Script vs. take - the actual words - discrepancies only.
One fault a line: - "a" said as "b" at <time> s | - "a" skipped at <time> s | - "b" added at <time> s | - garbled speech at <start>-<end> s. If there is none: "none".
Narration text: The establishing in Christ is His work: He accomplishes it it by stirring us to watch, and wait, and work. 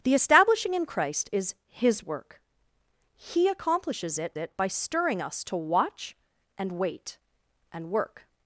none